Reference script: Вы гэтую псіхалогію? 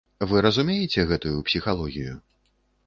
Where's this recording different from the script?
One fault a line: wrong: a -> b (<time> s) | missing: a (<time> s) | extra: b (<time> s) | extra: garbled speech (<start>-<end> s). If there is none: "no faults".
extra: разумееце (0.5 s)